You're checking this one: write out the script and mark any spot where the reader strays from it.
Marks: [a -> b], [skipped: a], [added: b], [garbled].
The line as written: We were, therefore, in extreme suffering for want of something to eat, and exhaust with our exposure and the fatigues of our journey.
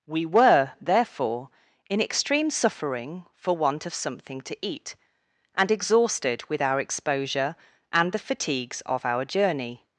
We were, therefore, in extreme suffering for want of something to eat, and [exhaust -> exhausted] with our exposure and the fatigues of our journey.